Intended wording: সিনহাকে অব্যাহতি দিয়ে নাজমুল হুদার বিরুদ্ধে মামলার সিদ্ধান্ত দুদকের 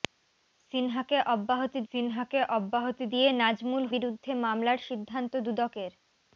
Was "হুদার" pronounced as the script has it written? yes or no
no